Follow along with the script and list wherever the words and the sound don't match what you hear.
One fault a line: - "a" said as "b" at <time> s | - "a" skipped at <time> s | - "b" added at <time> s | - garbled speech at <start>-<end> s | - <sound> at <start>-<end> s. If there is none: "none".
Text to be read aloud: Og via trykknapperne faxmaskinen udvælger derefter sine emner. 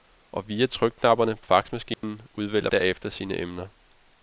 - dropout at 1.9-2.0 s